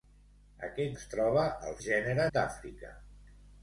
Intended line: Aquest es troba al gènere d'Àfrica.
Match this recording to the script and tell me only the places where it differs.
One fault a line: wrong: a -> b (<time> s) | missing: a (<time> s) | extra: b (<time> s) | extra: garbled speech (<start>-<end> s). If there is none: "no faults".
no faults